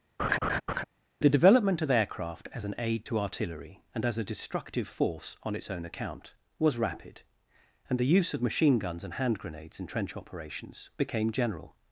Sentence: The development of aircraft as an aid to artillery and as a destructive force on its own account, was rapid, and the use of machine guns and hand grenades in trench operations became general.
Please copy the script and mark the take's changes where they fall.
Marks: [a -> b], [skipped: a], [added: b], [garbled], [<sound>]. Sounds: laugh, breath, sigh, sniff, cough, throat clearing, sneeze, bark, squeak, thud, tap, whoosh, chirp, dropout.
[laugh] The development of aircraft as an aid to artillery and as a destructive force on its own account, was rapid, and the use of machine guns and hand grenades in trench operations became general.